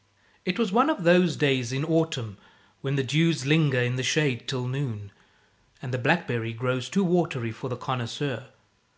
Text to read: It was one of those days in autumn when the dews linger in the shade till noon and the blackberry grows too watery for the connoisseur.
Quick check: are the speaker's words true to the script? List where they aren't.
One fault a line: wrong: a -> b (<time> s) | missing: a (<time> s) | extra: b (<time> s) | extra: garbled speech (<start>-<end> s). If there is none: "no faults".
no faults